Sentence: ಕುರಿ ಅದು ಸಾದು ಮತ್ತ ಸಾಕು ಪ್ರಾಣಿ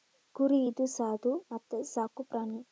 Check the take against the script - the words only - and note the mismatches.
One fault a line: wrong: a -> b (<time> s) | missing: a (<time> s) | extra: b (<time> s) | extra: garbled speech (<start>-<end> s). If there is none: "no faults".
wrong: ಅದು -> ಇದು (0.7 s)